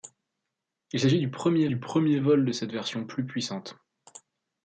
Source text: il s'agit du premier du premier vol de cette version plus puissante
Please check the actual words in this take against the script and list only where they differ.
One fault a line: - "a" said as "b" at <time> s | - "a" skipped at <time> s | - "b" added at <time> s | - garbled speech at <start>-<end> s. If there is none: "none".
none